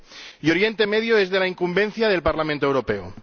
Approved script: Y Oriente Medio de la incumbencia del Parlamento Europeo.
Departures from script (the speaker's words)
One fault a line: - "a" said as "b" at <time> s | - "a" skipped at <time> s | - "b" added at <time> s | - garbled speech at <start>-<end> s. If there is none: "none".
- "es" added at 1.2 s